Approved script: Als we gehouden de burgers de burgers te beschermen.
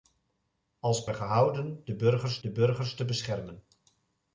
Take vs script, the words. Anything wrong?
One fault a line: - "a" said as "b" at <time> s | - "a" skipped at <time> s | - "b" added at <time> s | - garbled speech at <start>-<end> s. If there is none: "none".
none